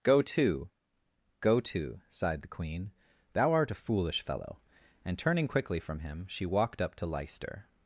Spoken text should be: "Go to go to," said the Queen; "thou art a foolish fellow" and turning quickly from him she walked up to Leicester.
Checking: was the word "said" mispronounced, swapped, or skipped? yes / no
yes